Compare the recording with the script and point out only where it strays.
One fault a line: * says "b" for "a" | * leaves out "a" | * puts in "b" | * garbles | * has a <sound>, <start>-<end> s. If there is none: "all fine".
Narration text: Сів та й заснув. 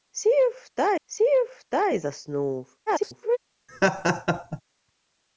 * puts in "сів та"
* garbles
* has a laugh, 3.7-4.6 s